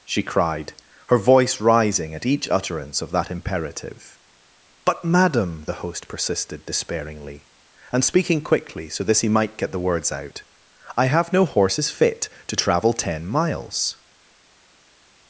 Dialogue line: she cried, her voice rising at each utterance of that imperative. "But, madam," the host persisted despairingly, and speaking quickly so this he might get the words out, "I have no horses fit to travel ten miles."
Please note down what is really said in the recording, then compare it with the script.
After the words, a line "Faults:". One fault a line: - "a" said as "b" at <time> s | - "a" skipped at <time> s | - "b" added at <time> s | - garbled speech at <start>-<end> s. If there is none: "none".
she cried, her voice rising at each utterance of that imperative. "But, madam," the host persisted despairingly, and speaking quickly so this he might get the words out, "I have no horses fit to travel ten miles."
Faults:
none